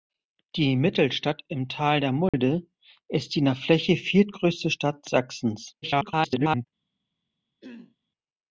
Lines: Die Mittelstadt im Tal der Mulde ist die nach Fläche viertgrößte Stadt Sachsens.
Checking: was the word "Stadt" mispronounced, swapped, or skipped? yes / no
no